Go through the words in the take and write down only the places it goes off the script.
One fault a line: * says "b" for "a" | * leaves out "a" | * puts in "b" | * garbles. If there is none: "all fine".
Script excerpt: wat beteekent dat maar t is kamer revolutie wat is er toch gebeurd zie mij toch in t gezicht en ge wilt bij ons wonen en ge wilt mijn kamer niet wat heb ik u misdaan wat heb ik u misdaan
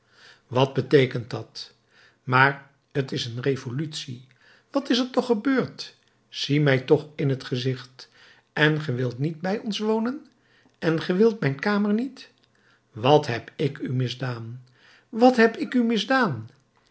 * says "een" for "kamer"
* puts in "niet"